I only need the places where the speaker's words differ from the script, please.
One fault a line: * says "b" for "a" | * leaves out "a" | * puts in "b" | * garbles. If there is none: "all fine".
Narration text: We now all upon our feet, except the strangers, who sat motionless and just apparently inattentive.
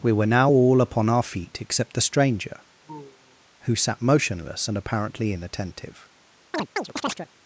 * puts in "were"
* says "stranger" for "strangers"
* leaves out "just"